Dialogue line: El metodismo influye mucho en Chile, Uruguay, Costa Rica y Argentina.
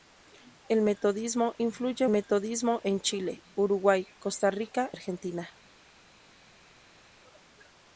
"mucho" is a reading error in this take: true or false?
true